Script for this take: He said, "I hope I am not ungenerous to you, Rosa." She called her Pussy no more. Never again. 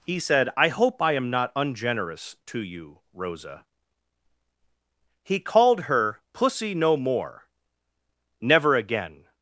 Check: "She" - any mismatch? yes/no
yes